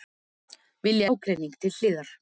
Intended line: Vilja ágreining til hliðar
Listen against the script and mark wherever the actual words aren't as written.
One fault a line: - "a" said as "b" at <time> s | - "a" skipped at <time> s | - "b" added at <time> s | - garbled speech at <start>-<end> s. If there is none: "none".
none